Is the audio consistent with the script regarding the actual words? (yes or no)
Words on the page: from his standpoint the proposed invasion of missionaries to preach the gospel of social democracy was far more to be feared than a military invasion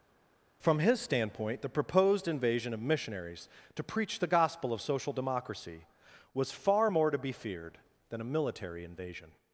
yes